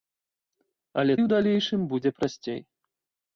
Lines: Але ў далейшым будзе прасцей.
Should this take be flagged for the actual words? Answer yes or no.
no